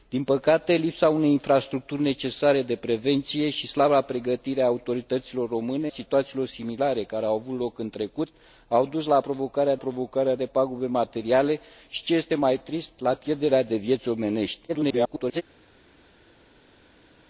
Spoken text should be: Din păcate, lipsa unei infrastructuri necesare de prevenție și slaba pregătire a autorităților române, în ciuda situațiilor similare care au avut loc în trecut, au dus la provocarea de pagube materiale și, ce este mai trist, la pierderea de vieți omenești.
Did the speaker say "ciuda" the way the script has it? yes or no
no